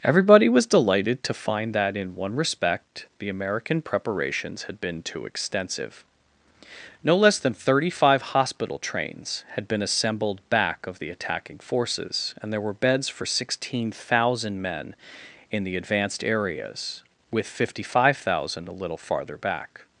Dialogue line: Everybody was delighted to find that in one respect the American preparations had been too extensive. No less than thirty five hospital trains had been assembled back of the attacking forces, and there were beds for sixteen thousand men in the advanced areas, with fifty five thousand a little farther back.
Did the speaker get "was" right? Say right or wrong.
right